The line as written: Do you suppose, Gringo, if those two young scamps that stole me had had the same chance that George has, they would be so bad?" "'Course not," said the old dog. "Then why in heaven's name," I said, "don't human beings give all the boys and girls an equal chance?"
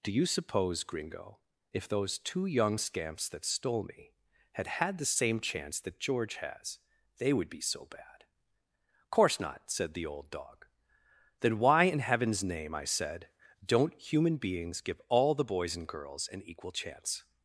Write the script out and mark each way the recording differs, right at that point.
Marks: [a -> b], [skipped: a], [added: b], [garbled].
Do you suppose, Gringo, if those two young scamps that stole me had had the same chance that George has, they would be so bad?" "'Course not," said the old dog. "Then why in heaven's name," I said, "don't human beings give all the boys and girls an equal chance?"